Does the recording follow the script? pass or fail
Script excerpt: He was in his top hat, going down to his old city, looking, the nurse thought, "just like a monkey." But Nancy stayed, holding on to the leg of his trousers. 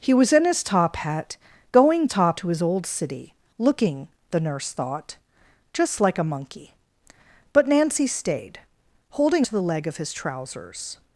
fail